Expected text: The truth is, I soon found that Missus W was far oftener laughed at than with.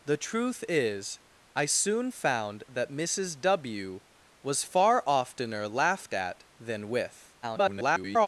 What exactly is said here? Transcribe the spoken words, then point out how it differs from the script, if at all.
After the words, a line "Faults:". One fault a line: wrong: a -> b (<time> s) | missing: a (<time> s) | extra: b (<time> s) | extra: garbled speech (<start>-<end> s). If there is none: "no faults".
The truth is, I soon found that Missus W was far oftener laughed at than with. [garbled]
Faults:
extra: garbled speech (7.4-8.3 s)